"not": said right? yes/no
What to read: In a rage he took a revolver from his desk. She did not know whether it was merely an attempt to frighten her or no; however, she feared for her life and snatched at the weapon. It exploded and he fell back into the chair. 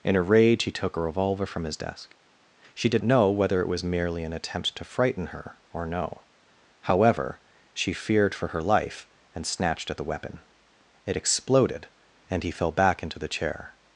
no